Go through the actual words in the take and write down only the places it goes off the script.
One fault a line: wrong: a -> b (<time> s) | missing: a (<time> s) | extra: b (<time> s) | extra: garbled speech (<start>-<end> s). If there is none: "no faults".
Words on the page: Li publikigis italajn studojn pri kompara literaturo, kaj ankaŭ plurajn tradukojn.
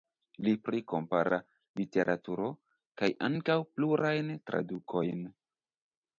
missing: publikigis italajn studojn (0.5 s)